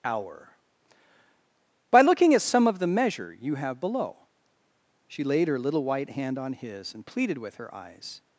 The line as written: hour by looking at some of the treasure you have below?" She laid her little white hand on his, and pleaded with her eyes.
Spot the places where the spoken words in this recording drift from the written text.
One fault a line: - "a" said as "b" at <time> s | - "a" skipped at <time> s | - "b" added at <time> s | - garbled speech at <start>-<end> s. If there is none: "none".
- "treasure" said as "measure" at 2.9 s